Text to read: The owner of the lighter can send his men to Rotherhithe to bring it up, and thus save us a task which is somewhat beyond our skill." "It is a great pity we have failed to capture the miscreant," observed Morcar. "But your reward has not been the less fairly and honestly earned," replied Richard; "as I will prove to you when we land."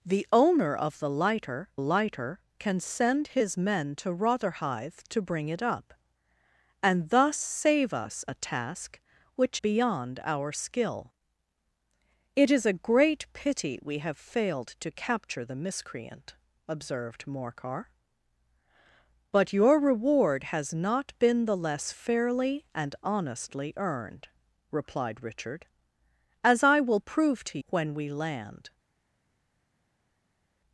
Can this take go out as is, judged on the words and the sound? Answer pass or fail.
fail